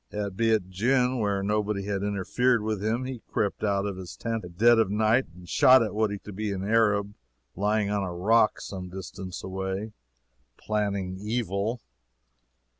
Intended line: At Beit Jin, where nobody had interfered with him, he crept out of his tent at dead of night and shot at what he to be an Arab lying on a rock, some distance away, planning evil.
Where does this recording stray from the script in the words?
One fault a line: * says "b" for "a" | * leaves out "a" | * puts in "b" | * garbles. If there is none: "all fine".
all fine